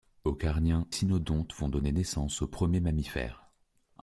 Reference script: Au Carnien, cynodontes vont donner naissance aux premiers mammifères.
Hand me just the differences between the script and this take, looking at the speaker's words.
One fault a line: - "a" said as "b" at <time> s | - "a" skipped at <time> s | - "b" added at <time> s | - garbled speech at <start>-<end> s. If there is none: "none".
none